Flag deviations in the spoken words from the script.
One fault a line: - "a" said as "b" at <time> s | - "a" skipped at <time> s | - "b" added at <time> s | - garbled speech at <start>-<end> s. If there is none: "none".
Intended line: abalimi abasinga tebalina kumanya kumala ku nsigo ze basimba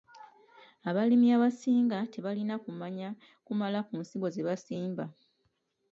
none